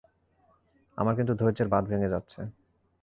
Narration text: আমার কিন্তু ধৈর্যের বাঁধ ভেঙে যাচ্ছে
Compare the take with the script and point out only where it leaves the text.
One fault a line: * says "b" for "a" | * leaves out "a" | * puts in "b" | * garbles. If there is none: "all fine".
all fine